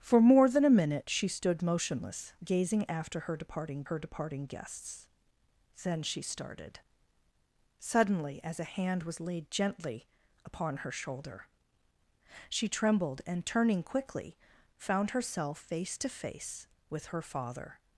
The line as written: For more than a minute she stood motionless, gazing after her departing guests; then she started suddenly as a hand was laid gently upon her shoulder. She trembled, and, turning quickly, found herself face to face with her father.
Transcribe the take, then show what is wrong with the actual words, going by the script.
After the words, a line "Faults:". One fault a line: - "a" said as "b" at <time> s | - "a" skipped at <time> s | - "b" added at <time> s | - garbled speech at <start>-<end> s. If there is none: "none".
For more than a minute she stood motionless, gazing after her departing her departing guests; then she started suddenly as a hand was laid gently upon her shoulder. She trembled, and, turning quickly, found herself face to face with her father.
Faults:
- "her departing" added at 3.8 s